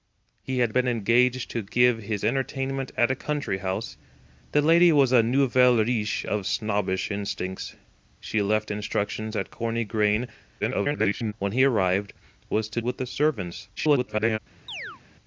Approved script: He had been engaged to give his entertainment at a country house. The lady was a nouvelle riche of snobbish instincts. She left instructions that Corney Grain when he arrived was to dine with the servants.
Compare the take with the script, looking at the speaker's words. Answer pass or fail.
fail